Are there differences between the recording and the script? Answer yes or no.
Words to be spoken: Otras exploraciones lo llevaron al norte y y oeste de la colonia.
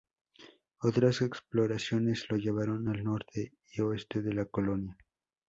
yes